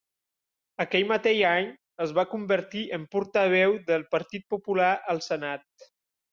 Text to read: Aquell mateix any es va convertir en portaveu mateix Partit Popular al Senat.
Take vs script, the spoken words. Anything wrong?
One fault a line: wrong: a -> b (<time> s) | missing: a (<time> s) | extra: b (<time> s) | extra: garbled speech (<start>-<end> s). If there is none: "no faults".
wrong: mateix -> del (3.9 s)